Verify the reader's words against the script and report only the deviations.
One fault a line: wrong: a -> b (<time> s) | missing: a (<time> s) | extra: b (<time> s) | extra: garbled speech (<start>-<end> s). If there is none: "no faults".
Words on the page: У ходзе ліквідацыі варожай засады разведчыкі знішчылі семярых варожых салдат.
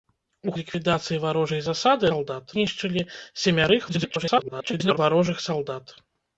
missing: ходзе (0.5 s)
wrong: разведчыкі -> салдат (2.1 s)
extra: garbled speech (3.9-5.0 s)